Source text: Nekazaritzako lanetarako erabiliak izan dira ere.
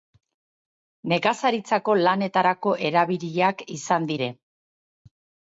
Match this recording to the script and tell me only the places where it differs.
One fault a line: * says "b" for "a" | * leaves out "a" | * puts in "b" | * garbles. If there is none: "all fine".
* leaves out "dira"